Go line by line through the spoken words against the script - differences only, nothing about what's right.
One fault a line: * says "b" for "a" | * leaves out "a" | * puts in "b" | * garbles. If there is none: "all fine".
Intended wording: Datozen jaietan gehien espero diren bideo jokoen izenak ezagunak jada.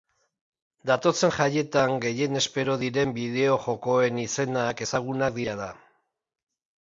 all fine